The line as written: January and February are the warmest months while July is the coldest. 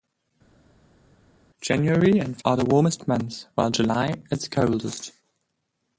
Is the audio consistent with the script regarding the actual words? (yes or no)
no